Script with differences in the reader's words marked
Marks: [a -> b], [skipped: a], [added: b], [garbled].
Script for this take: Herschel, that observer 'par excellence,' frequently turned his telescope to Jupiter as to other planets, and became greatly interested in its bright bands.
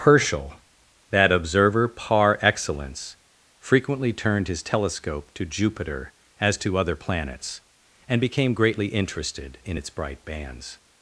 Herschel, that observer 'par excellence,' frequently turned his telescope to Jupiter as to other planets, and became greatly interested in its bright bands.